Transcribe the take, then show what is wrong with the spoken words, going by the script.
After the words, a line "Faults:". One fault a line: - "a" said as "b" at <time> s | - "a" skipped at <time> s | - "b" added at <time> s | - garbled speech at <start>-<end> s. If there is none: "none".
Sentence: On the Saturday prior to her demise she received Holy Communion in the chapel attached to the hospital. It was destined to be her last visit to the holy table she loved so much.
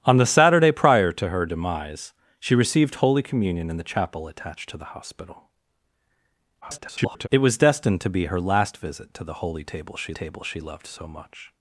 On the Saturday prior to her demise she received Holy Communion in the chapel attached to the hospital. [garbled] It was destined to be her last visit to the holy table she table she loved so much.
Faults:
- garbled speech at 6.6-7.3 s
- "table she" added at 10.1 s